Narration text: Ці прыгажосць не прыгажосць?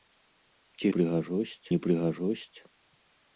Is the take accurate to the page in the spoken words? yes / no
yes